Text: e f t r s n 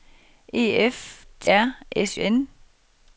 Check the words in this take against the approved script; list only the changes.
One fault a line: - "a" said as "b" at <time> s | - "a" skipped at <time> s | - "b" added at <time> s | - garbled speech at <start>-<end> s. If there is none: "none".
none